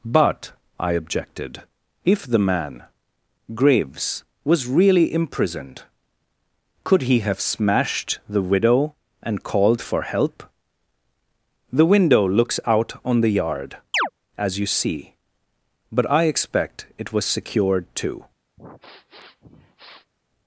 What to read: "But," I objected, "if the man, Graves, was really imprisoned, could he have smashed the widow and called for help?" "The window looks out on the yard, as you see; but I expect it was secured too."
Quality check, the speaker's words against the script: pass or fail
pass